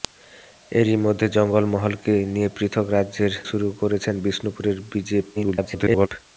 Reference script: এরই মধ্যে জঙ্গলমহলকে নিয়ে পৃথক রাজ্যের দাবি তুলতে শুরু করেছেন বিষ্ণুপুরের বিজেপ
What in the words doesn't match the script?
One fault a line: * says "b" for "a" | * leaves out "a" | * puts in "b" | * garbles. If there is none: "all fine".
* leaves out "দাবি তুলতে"
* garbles